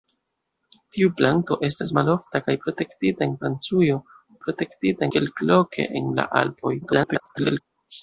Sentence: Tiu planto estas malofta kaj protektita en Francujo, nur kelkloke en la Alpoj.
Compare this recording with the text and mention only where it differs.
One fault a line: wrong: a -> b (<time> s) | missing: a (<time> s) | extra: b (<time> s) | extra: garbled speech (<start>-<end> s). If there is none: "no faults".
wrong: nur -> protektita (4.5 s)
extra: garbled speech (6.8-7.6 s)